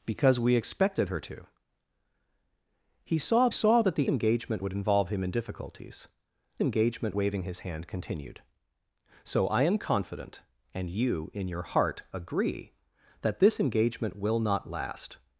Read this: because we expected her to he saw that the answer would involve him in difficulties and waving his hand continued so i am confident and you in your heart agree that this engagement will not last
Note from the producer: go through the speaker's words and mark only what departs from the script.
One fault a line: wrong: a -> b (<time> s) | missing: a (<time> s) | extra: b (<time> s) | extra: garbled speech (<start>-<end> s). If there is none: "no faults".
extra: saw (3.5 s)
wrong: answer -> engagement (4.1 s)
wrong: and -> engagement (6.6 s)